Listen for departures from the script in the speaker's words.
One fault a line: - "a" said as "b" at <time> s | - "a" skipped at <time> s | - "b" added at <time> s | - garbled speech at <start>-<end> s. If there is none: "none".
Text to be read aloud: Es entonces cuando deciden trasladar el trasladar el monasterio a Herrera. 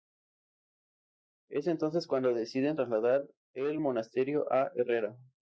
- "trasladar el" skipped at 3.8 s